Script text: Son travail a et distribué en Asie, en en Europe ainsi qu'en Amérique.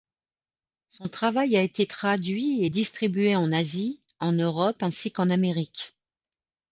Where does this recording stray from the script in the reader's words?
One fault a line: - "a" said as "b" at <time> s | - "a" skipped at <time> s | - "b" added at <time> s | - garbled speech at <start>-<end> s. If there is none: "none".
- "été traduit" added at 1.6 s
- "en" skipped at 4.3 s